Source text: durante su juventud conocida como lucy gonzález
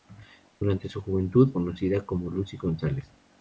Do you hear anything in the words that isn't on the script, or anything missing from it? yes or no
no